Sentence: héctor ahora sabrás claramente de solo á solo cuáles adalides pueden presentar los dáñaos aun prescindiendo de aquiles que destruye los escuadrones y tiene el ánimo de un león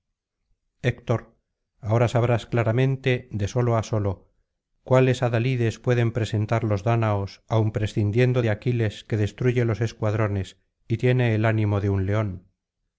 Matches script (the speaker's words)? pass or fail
pass